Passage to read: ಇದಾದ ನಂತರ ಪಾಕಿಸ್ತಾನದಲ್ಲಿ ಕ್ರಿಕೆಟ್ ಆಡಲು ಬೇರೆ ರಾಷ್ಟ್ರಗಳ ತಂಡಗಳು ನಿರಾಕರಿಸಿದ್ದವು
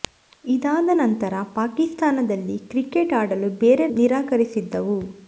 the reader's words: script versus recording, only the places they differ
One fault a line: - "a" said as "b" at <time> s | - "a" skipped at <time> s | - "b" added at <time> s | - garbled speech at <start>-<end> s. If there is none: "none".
- "ರಾಷ್ಟ್ರಗಳ ತಂಡಗಳು" skipped at 3.9 s